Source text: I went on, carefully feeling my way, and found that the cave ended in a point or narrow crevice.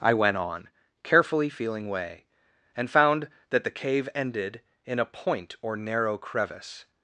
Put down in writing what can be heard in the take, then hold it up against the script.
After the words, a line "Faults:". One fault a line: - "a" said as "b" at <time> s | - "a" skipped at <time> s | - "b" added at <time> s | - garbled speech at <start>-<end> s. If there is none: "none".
I went on, carefully feeling way, and found that the cave ended in a point or narrow crevice.
Faults:
- "my" skipped at 1.9 s